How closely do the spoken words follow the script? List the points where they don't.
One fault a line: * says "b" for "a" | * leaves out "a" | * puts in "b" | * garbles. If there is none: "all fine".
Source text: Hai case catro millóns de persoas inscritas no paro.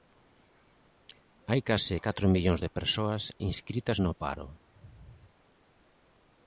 all fine